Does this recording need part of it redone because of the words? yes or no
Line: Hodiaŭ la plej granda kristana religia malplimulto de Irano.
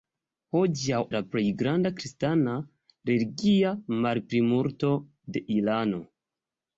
no